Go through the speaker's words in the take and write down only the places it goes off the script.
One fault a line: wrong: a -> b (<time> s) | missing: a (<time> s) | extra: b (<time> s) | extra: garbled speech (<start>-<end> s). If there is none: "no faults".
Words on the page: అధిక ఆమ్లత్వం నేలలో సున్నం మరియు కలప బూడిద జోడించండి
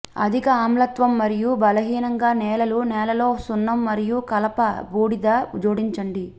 extra: మరియు బలహీనంగా నేలలు (1.2 s)